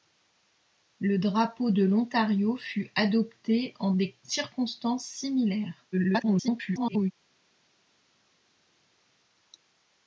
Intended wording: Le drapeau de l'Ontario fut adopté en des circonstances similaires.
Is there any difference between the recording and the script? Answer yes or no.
yes